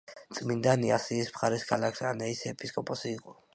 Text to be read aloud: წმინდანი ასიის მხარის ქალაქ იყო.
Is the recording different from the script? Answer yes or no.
yes